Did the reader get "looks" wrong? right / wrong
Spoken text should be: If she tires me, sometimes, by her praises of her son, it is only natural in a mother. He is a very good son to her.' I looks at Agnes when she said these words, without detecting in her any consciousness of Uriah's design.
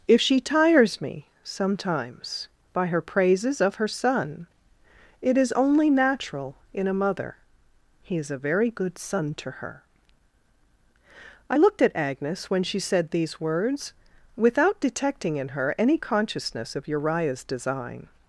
wrong